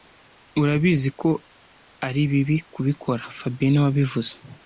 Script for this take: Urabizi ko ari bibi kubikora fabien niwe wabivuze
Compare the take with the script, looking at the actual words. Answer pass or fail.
pass